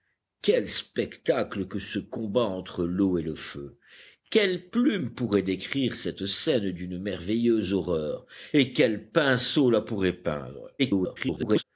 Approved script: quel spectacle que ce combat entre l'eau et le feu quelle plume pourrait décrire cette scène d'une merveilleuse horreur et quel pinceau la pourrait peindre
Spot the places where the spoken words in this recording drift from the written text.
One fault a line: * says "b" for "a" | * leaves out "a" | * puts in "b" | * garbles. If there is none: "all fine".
* garbles